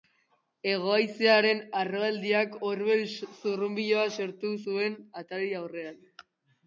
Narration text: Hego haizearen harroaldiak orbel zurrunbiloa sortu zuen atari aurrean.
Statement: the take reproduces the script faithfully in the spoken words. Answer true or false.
true